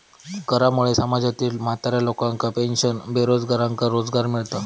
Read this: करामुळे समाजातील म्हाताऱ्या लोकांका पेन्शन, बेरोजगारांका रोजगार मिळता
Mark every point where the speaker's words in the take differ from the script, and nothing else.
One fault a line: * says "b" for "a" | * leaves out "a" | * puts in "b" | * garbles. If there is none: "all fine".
all fine